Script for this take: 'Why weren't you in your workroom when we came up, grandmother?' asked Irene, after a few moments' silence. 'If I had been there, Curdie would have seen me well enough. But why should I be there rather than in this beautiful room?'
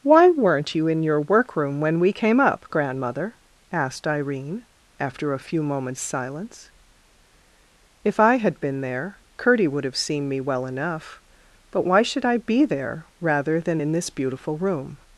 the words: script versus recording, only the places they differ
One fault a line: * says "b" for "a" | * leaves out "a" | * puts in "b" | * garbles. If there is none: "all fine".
all fine